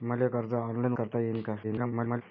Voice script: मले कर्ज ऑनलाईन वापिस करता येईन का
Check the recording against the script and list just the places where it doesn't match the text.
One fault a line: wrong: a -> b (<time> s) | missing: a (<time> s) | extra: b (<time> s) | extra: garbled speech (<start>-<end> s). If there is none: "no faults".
missing: वापिस (0.9 s)
extra: garbled speech (1.6-2.2 s)